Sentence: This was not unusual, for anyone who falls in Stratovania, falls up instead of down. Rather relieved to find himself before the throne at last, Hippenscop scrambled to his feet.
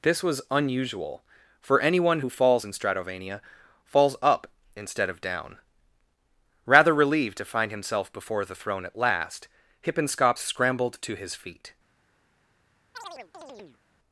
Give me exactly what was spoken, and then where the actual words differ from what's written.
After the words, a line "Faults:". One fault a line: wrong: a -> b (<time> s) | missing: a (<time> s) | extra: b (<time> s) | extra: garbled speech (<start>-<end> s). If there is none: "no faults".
This was unusual, for anyone who falls in Stratovania, falls up instead of down. Rather relieved to find himself before the throne at last, Hippenscop scrambled to his feet.
Faults:
missing: not (0.4 s)